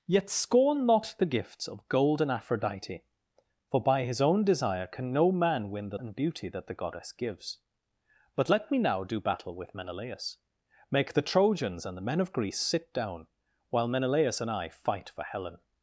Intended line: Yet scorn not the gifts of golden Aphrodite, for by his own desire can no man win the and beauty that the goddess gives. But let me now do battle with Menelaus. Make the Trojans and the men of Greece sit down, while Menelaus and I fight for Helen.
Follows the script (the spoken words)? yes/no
yes